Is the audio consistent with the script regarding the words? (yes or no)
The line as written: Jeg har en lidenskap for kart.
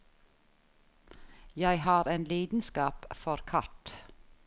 yes